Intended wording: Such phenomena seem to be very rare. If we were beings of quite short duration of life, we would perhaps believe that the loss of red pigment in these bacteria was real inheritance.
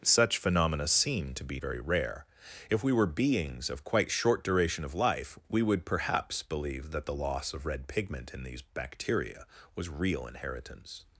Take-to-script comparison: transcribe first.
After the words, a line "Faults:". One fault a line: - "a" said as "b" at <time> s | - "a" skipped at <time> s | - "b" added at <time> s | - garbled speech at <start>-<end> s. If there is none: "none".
Such phenomena seem to be very rare. If we were beings of quite short duration of life, we would perhaps believe that the loss of red pigment in these bacteria was real inheritance.
Faults:
none